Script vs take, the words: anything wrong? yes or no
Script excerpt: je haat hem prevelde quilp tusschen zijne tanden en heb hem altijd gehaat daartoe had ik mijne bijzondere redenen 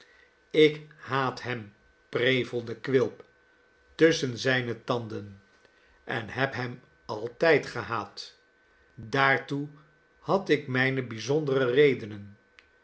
yes